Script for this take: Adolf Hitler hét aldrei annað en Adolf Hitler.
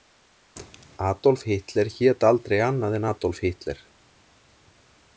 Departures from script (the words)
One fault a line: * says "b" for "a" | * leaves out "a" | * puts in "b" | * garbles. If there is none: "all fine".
all fine